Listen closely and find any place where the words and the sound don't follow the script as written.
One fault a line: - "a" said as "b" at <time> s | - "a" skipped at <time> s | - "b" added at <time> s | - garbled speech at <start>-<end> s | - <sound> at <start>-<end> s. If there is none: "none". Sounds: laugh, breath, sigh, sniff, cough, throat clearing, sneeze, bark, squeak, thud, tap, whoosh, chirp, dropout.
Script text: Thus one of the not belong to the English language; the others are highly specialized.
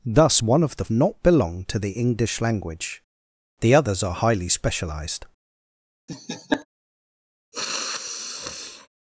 - laugh at 6.1-6.7 s
- sniff at 7.5-8.9 s